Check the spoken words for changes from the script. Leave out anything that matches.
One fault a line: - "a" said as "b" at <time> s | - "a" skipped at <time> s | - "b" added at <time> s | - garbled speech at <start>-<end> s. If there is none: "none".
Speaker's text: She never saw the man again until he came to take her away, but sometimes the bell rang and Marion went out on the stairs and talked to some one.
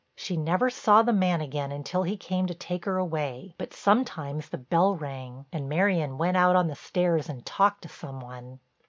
none